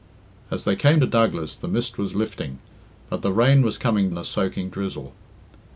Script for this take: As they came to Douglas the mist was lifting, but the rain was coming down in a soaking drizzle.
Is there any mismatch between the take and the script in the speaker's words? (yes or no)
yes